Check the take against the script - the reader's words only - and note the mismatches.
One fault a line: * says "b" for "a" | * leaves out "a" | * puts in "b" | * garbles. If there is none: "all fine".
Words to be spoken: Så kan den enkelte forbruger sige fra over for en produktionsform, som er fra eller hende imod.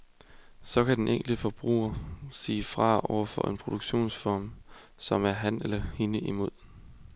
* says "ham" for "fra"